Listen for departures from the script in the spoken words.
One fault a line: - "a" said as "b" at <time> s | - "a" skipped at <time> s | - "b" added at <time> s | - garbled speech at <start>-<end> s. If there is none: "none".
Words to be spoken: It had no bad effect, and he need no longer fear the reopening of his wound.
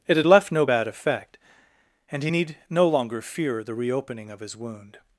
- "left" added at 0.3 s